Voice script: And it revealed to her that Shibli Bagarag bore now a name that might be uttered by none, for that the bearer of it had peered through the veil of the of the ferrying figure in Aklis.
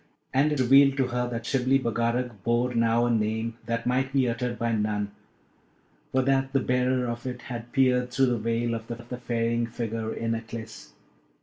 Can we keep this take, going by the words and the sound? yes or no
yes